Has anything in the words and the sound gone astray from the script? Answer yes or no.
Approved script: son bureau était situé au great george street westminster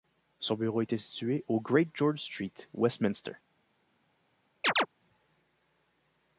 yes